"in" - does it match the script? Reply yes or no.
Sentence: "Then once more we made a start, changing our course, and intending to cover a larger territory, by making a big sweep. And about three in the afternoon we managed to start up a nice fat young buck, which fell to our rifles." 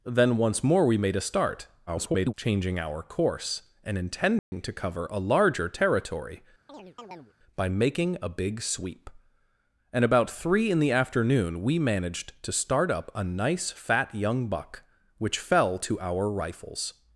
yes